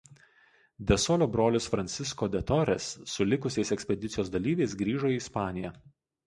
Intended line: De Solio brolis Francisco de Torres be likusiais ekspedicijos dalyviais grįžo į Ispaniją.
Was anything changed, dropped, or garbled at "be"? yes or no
yes